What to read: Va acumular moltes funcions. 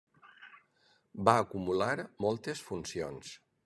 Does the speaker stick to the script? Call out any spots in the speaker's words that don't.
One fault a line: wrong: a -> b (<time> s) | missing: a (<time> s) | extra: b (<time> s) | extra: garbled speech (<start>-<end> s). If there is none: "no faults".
no faults